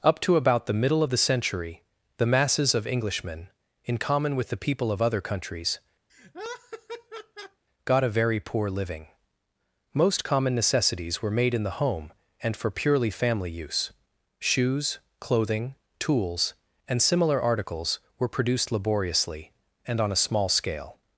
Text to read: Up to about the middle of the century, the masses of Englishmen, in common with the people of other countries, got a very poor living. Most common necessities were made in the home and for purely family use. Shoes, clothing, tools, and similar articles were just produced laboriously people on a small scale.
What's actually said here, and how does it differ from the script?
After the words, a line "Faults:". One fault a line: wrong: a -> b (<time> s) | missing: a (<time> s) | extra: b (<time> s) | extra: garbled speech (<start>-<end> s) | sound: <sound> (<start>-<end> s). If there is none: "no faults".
Up to about the middle of the century, the masses of Englishmen, in common with the people of other countries, got a very poor living. Most common necessities were made in the home and for purely family use. Shoes, clothing, tools, and similar articles were produced laboriously and on a small scale.
Faults:
sound: laugh (6.1-7.6 s)
missing: just (18.3 s)
wrong: people -> and (19.9 s)